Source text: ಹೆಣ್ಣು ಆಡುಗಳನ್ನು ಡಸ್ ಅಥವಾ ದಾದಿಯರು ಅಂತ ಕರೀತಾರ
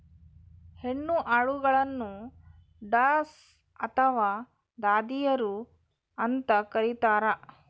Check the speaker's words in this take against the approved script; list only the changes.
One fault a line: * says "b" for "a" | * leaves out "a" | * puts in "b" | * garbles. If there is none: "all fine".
all fine